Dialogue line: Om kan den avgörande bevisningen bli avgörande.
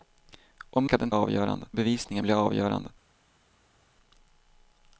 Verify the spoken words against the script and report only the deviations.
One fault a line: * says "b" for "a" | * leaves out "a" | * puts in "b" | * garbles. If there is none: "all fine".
all fine